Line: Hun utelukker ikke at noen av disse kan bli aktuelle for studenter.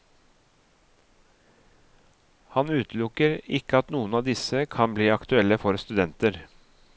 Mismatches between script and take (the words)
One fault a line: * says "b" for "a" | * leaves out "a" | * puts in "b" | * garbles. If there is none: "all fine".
* says "Han" for "Hun"